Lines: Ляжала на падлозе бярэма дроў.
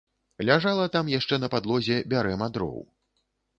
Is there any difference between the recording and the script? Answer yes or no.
yes